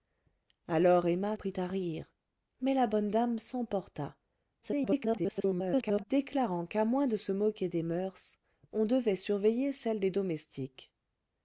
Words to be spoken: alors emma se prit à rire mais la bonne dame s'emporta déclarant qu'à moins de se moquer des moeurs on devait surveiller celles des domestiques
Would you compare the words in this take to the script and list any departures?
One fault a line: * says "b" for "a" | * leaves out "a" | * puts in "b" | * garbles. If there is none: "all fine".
* leaves out "se"
* garbles